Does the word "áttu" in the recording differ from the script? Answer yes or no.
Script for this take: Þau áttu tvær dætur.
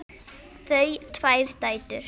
yes